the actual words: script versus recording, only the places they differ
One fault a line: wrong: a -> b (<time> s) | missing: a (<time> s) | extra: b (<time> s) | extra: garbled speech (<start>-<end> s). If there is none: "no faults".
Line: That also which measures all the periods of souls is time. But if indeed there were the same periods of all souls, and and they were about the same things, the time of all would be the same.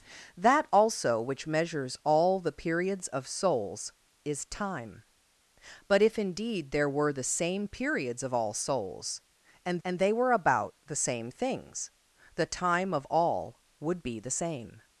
no faults